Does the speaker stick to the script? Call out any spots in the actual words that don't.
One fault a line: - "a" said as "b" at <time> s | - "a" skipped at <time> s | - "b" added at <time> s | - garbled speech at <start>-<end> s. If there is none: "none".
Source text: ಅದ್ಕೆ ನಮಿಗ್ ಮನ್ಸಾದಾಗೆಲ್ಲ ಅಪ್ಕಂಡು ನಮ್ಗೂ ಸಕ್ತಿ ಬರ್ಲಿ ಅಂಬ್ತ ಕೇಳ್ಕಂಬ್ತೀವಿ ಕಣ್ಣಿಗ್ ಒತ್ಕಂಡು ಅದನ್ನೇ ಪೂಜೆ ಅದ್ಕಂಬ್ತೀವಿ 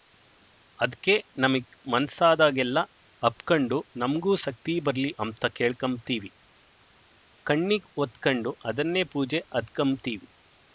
none